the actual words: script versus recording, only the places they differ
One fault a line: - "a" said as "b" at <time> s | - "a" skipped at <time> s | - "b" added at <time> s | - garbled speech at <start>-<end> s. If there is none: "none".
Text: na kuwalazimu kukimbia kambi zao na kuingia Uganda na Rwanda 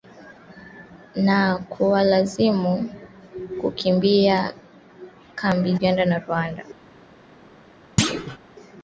- "zao na kuingia" skipped at 5.8 s